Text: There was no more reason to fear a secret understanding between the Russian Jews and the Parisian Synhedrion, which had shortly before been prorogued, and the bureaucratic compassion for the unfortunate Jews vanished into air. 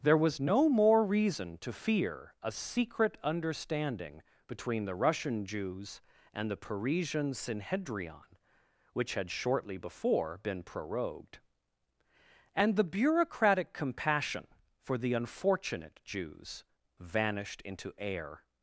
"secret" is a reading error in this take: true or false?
false